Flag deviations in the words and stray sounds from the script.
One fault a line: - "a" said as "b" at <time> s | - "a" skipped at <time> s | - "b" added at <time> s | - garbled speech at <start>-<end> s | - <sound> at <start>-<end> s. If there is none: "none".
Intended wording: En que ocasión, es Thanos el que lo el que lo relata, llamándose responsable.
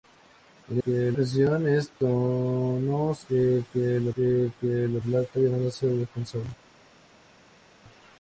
none